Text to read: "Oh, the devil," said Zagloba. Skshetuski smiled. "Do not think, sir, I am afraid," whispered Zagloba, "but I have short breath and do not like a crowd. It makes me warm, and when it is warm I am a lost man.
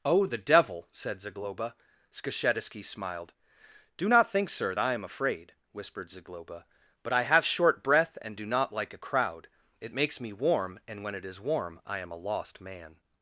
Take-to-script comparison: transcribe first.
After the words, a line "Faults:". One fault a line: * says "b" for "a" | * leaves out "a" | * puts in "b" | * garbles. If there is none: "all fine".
"Oh, the devil," said Zagloba. Skshetuski smiled. "Do not think, sir, I am afraid," whispered Zagloba, "but I have short breath and do not like a crowd. It makes me warm, and when it is warm I am a lost man.
Faults:
all fine